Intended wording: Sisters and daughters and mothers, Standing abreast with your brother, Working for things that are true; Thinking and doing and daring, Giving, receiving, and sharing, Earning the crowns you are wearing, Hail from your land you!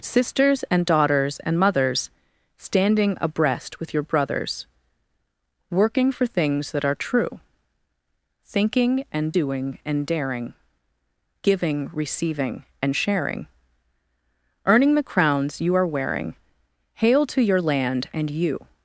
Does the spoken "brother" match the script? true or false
false